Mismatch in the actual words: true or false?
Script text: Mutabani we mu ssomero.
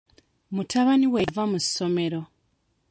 true